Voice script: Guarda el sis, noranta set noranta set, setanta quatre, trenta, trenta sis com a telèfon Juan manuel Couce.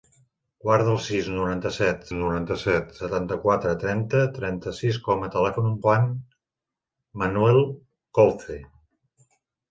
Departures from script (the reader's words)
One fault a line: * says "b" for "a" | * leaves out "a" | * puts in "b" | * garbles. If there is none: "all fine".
all fine